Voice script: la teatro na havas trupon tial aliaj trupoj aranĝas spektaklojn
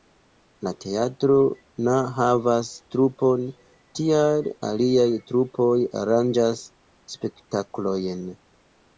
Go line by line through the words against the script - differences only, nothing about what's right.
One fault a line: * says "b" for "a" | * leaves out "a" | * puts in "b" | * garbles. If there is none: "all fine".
all fine